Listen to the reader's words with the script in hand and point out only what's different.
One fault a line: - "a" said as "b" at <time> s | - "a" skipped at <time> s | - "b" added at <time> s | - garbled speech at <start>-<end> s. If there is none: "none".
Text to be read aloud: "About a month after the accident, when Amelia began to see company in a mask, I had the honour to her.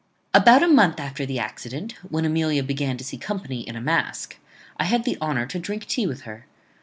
- "drink tea with" added at 5.6 s